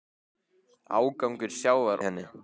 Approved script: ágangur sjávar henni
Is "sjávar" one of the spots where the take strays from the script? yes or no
no